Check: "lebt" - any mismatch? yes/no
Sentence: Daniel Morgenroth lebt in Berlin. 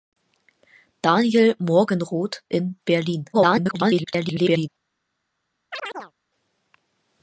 yes